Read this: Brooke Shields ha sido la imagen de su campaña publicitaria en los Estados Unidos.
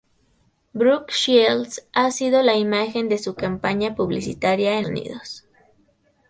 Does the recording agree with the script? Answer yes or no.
no